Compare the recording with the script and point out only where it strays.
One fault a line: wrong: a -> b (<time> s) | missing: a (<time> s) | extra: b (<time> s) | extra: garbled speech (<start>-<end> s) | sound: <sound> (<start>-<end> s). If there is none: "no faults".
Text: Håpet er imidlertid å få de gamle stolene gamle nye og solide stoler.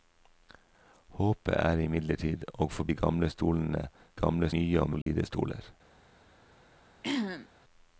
sound: dropout (5.0-5.1 s)
sound: throat clearing (7.0-7.5 s)